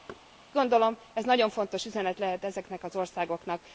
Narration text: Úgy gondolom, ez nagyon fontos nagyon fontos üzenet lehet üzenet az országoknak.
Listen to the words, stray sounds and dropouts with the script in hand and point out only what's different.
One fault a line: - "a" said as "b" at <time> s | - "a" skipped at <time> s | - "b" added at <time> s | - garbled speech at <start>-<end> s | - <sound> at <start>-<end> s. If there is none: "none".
- thud at 0.1-0.2 s
- "nagyon fontos" skipped at 1.8 s
- "üzenet" said as "ezeknek" at 2.4 s